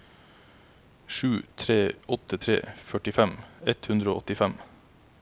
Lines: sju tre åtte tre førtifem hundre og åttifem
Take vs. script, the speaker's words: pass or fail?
fail